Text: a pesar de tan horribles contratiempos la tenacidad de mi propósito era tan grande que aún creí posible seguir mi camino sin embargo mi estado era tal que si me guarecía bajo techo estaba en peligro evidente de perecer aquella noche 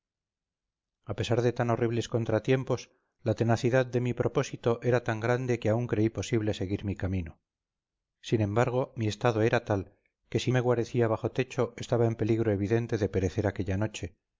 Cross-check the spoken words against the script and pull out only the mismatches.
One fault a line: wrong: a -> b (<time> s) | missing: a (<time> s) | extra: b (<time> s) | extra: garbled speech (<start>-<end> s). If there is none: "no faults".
no faults